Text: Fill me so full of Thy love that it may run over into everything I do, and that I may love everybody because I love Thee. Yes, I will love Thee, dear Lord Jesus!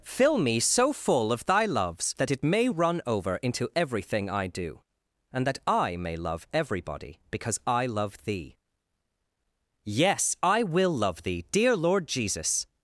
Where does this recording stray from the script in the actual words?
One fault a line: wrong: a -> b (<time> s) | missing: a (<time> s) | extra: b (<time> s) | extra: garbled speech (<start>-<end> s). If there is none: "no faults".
wrong: love -> loves (1.6 s)